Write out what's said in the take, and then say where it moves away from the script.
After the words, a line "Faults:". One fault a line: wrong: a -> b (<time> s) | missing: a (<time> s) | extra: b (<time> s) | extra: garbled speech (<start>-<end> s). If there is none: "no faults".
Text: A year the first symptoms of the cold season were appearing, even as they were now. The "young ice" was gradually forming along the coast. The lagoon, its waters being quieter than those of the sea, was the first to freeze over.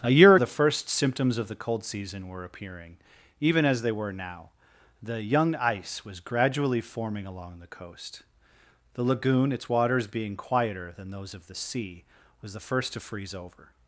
A year the first symptoms of the cold season were appearing, even as they were now. The "young ice" was gradually forming along the coast. The lagoon, its waters being quieter than those of the sea, was the first to freeze over.
Faults:
no faults